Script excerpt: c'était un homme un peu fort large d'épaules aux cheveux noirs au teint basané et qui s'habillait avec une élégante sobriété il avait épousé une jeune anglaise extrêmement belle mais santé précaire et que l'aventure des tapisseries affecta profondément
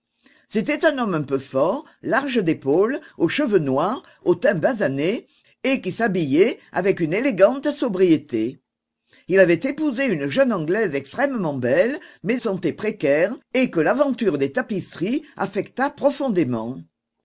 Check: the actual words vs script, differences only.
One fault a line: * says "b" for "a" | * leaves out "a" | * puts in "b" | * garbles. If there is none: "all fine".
all fine